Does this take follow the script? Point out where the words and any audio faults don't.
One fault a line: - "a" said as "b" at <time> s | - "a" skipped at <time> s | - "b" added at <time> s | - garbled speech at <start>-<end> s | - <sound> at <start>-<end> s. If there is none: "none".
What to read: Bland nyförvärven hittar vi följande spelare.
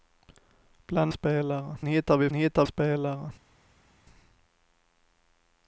- "nyförvärven" said as "spelare" at 1.1 s
- "följande" said as "hittar" at 2.3 s